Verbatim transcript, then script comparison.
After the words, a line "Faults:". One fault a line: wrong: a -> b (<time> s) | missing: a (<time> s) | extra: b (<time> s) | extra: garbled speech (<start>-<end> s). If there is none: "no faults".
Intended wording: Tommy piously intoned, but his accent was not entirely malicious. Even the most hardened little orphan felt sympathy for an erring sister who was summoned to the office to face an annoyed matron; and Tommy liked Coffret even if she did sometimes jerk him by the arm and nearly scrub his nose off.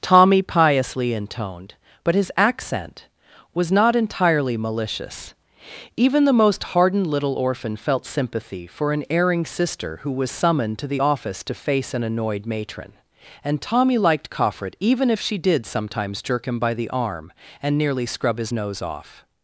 Tommy piously intoned, but his accent was not entirely malicious. Even the most hardened little orphan felt sympathy for an erring sister who was summoned to the office to face an annoyed matron; and Tommy liked Coffret even if she did sometimes jerk him by the arm and nearly scrub his nose off.
Faults:
no faults